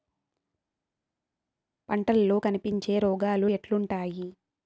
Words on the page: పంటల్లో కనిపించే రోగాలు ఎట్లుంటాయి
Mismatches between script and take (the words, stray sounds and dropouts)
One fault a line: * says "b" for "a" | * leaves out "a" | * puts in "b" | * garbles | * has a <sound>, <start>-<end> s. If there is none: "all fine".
all fine